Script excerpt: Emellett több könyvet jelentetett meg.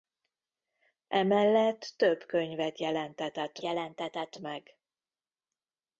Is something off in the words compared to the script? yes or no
yes